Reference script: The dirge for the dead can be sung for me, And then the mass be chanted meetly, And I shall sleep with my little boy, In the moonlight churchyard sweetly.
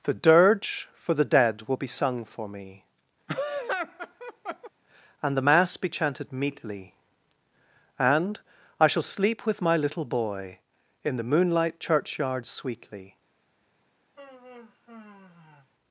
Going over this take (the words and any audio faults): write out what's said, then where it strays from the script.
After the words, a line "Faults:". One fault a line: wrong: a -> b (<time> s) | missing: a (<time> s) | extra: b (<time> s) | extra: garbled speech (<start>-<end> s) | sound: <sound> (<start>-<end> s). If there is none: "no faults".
The dirge for the dead will be sung for me, And the mass be chanted meetly, And I shall sleep with my little boy, In the moonlight churchyard sweetly.
Faults:
wrong: can -> will (1.7 s)
sound: laugh (3.3-4.7 s)
missing: then (5.4 s)
sound: sigh (14.2-15.7 s)